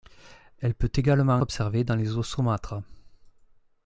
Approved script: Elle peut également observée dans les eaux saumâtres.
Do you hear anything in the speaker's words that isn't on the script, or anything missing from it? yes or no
no